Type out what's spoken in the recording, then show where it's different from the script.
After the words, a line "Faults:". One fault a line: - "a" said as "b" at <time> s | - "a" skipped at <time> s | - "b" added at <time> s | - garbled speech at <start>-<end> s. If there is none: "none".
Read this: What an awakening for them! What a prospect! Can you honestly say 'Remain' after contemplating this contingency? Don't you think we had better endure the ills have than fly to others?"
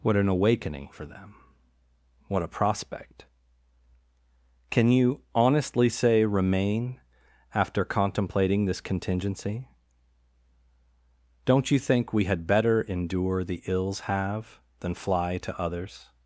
What an awakening for them! What a prospect! Can you honestly say 'Remain' after contemplating this contingency? Don't you think we had better endure the ills have than fly to others?"
Faults:
none